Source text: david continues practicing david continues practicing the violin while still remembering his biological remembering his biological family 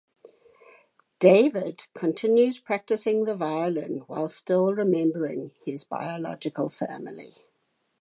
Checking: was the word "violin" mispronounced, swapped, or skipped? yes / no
no